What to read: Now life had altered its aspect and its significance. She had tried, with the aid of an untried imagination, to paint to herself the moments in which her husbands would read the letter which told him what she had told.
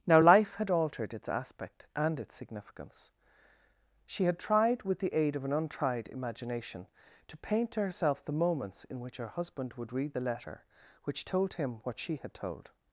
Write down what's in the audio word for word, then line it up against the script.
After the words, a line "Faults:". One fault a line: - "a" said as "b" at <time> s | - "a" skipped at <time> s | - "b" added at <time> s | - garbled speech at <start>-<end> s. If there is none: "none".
Now life had altered its aspect and its significance. She had tried, with the aid of an untried imagination, to paint to herself the moments in which her husband would read the letter which told him what she had told.
Faults:
- "husbands" said as "husband" at 9.3 s